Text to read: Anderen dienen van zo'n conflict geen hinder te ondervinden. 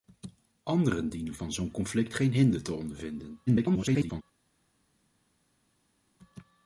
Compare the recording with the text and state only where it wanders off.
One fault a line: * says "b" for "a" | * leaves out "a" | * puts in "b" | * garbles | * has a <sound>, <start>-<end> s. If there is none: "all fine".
* garbles